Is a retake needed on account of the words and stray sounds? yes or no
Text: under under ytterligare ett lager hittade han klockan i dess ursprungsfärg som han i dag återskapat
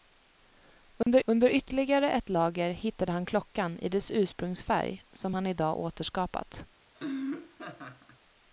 yes